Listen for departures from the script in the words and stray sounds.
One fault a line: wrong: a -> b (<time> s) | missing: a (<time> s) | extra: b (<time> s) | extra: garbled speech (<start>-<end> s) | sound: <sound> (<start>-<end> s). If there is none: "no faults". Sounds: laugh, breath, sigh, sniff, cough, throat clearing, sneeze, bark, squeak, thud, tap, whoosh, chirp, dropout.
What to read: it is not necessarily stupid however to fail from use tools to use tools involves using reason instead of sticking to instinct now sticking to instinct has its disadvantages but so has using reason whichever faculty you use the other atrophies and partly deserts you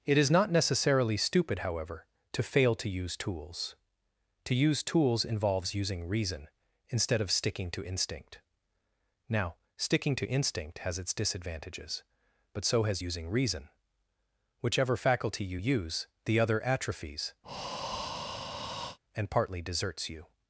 wrong: from -> to (2.7 s)
sound: breath (17.4-19.0 s)